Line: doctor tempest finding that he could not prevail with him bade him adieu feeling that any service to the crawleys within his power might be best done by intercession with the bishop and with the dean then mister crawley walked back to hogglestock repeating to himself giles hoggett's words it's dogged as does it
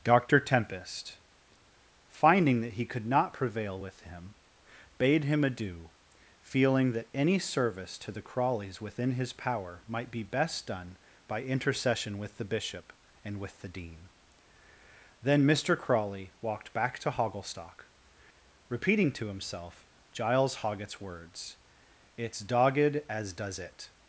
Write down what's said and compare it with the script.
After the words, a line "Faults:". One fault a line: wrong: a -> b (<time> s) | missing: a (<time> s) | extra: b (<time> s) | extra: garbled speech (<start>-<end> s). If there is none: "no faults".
doctor tempest finding that he could not prevail with him bade him adieu feeling that any service to the crawleys within his power might be best done by intercession with the bishop and with the dean then mister crawley walked back to hogglestock repeating to himself giles hoggett's words it's dogged as does it
Faults:
no faults